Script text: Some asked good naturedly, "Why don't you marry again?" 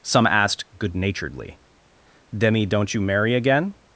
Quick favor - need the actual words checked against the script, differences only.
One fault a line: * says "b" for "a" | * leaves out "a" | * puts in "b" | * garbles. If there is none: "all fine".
* says "Demi" for "Why"